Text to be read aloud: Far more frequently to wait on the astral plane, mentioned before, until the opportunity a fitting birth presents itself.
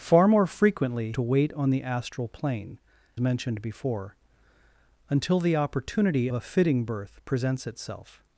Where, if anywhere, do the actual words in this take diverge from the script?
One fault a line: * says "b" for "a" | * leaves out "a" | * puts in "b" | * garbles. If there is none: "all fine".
all fine